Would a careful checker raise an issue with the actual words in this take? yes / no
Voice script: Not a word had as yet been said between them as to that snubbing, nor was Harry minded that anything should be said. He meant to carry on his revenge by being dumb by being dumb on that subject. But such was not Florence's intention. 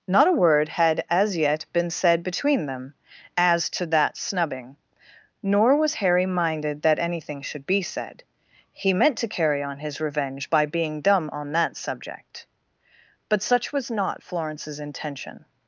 yes